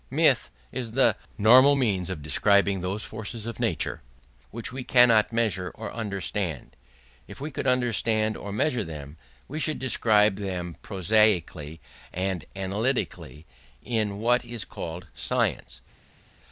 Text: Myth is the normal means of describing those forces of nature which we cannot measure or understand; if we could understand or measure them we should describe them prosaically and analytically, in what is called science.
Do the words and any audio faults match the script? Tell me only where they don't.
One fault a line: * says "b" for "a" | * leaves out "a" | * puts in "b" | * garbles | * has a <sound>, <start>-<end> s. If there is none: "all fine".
all fine